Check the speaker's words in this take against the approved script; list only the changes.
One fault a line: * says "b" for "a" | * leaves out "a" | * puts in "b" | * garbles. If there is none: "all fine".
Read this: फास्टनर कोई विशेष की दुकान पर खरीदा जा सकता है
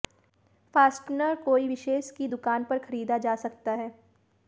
all fine